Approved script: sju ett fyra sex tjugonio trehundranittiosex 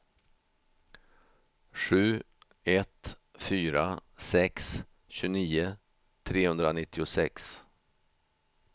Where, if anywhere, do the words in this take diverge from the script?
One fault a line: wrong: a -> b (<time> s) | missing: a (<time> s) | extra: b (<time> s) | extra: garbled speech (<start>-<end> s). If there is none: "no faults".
no faults